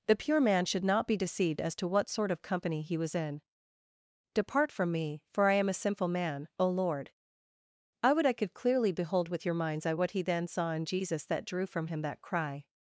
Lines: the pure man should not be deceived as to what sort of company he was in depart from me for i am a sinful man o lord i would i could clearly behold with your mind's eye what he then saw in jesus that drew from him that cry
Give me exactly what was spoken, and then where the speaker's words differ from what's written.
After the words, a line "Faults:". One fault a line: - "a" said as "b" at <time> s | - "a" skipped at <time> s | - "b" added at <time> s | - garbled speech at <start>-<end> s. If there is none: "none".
the pure man should not be deceived as to what sort of company he was in depart from me for i am a sinful man o lord i would i could clearly behold with your mind's eye what he then saw in jesus that drew from him that cry
Faults:
none